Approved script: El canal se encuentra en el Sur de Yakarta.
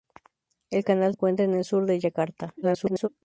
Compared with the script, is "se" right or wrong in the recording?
wrong